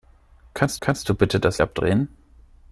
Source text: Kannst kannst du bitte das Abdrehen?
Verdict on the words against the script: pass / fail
pass